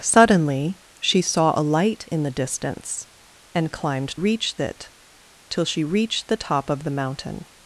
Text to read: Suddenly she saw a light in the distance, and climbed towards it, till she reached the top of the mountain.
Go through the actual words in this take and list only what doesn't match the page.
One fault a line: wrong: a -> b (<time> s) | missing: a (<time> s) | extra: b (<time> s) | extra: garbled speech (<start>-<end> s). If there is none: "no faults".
wrong: towards -> reached (4.1 s)